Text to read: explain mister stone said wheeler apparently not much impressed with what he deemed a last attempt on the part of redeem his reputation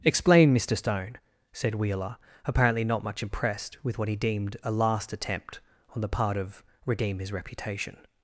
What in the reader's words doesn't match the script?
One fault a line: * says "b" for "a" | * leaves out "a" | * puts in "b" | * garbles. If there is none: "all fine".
all fine